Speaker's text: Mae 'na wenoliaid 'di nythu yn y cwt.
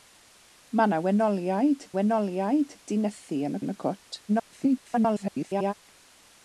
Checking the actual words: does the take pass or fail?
fail